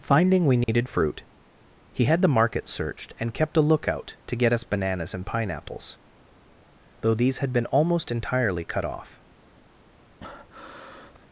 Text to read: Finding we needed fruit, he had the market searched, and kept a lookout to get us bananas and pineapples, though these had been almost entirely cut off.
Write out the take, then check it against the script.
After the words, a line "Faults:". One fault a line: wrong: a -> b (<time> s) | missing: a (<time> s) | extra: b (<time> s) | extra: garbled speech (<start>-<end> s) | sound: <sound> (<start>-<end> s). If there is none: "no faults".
Finding we needed fruit, he had the market searched, and kept a lookout to get us bananas and pineapples, though these had been almost entirely cut off.
Faults:
sound: dropout (0.6-0.7 s)
sound: breath (10.2-11.3 s)